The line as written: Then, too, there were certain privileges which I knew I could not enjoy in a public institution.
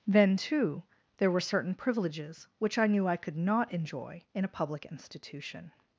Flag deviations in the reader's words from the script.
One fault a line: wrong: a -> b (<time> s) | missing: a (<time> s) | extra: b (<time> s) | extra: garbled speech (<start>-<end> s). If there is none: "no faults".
no faults